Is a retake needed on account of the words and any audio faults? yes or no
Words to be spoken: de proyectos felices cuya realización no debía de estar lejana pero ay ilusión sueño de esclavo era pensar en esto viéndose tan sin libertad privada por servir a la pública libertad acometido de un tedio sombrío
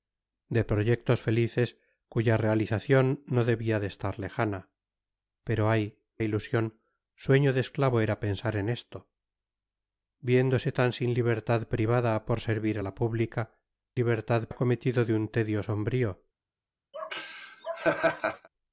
yes